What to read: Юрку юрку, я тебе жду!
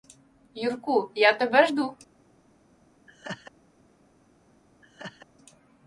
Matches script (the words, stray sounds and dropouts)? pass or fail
fail